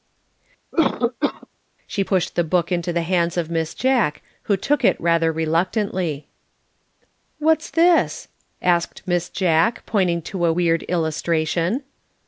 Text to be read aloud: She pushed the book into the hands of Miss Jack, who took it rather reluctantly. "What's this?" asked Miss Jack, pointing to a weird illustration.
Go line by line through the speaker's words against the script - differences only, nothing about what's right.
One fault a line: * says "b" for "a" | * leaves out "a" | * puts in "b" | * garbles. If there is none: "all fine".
all fine